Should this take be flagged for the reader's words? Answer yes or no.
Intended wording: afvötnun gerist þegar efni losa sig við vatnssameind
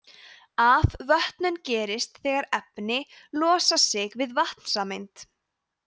no